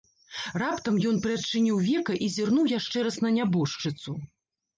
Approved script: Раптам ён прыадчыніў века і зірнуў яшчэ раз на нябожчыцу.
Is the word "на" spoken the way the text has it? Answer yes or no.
yes